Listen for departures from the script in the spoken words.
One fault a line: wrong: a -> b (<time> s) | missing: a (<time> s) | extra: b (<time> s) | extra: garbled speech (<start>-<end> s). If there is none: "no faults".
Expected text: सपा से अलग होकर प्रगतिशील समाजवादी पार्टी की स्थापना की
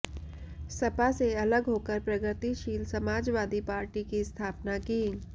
no faults